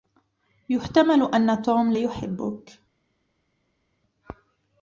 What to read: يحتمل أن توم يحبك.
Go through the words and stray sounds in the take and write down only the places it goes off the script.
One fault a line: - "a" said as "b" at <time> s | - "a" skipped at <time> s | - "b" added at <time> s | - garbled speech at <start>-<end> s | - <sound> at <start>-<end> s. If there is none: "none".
none